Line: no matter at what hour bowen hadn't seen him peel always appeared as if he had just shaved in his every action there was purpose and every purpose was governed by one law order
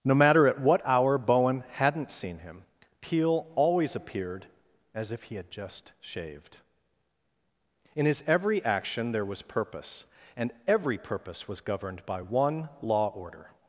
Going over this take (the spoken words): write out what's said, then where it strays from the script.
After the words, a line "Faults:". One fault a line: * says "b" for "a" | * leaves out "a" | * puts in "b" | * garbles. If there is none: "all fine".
no matter at what hour bowen hadn't seen him peel always appeared as if he had just shaved in his every action there was purpose and every purpose was governed by one law order
Faults:
all fine